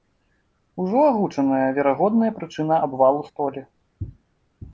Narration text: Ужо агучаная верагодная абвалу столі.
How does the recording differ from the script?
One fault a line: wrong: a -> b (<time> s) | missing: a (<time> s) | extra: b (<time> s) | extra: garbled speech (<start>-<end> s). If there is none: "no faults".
extra: прычына (2.4 s)